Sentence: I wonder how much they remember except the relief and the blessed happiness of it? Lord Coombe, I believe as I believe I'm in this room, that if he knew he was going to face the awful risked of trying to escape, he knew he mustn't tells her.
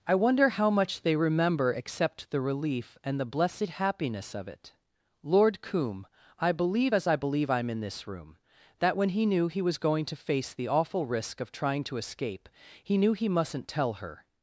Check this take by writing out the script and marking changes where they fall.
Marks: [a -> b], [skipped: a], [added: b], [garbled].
I wonder how much they remember except the relief and the blessed happiness of it? Lord Coombe, I believe as I believe I'm in this room, that [if -> when] he knew he was going to face the awful [risked -> risk] of trying to escape, he knew he mustn't [tells -> tell] her.